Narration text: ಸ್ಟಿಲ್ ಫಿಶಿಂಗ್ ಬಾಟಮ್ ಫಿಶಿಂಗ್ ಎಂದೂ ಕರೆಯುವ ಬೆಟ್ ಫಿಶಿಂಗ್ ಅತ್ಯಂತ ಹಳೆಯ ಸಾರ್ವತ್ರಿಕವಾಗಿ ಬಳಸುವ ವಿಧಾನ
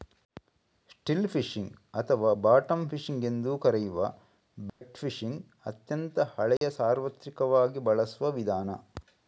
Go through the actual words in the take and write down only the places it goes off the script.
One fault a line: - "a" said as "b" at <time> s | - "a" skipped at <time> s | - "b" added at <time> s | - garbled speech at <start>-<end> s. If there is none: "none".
- "ಅಥವಾ" added at 1.9 s